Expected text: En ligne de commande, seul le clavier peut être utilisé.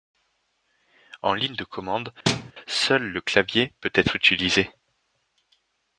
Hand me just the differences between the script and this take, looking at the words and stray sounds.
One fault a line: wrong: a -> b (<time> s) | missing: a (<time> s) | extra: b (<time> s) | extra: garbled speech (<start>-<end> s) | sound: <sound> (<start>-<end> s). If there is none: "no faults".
sound: thud (2.3-2.5 s)